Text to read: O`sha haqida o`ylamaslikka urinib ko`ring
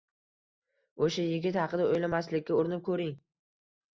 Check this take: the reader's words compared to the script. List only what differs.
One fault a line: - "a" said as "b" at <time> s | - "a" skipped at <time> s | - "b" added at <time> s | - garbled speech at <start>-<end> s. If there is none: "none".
- "yigit" added at 1.2 s